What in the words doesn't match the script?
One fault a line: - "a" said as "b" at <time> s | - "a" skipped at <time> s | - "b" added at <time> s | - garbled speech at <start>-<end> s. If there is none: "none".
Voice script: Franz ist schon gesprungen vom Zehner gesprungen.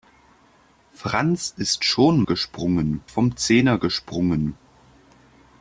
none